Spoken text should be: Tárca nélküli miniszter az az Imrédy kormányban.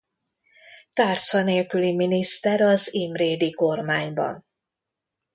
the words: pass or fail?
fail